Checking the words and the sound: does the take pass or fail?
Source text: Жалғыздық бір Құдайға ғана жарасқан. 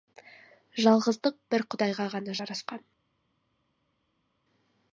pass